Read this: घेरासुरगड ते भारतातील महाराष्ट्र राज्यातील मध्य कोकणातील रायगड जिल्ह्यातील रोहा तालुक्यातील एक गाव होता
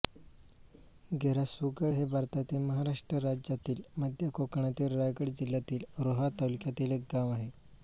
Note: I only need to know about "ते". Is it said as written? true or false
false